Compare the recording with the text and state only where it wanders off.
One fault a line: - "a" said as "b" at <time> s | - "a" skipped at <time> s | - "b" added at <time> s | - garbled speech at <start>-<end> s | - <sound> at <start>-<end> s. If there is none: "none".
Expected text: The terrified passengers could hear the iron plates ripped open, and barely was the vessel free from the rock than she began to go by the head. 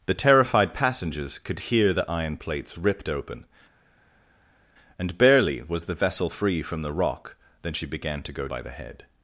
none